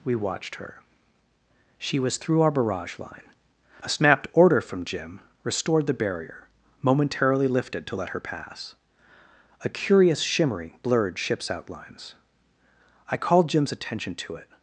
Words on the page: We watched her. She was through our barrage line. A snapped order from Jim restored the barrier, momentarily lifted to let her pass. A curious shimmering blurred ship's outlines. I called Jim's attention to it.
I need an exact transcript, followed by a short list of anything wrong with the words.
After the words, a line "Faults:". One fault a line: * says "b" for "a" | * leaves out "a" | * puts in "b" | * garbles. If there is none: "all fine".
We watched her. She was through our barrage line. A snapped order from Jim restored the barrier, momentarily lifted to let her pass. A curious shimmering blurred ship's outlines. I called Jim's attention to it.
Faults:
all fine